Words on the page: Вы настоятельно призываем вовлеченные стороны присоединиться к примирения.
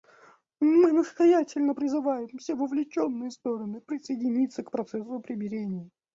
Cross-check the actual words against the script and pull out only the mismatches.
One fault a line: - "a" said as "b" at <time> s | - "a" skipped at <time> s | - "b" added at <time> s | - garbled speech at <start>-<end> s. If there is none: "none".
- "Вы" said as "Мы" at 0.6 s
- "все" added at 2.4 s
- "процессу" added at 4.7 s